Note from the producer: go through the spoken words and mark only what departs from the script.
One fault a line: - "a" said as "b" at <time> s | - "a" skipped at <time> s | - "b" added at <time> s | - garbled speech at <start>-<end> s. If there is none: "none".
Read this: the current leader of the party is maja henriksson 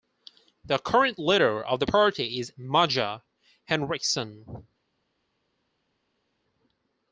none